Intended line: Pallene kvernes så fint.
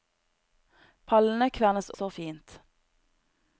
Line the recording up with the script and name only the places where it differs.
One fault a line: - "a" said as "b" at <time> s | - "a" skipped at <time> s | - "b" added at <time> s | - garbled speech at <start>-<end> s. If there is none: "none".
none